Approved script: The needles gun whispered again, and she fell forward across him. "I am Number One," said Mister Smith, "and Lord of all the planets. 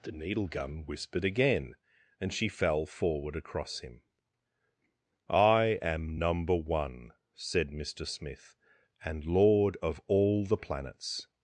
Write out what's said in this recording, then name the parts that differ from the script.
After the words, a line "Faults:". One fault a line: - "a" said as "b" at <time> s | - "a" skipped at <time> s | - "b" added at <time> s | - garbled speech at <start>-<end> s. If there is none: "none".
The needle gun whispered again, and she fell forward across him. "I am Number One," said Mister Smith, "and Lord of all the planets.
Faults:
- "needles" said as "needle" at 0.1 s